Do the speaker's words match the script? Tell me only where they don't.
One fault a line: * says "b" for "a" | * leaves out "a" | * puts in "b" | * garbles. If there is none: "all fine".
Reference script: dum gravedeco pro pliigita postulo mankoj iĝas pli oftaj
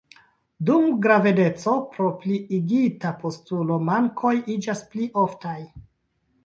all fine